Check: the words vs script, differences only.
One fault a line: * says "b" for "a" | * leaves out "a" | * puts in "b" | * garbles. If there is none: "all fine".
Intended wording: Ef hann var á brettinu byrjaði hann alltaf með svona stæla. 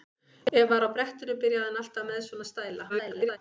* leaves out "hann"
* garbles